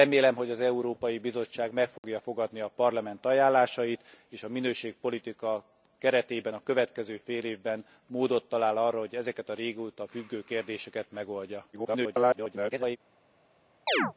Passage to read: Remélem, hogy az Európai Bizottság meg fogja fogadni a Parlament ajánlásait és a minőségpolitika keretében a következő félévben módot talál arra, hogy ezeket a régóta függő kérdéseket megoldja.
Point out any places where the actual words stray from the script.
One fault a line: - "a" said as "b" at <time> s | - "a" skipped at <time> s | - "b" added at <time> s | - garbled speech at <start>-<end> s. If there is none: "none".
- garbled speech at 11.7-13.0 s